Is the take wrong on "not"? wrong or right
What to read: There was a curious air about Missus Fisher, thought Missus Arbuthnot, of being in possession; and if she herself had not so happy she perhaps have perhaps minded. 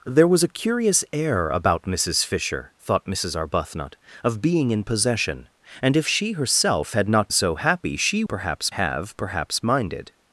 right